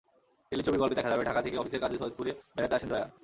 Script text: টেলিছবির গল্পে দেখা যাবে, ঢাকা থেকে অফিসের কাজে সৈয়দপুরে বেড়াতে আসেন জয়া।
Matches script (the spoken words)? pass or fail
pass